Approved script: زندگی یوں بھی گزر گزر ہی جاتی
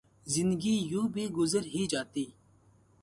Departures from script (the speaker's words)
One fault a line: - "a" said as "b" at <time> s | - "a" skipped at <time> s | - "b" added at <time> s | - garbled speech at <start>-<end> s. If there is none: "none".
- "گزر" skipped at 1.6 s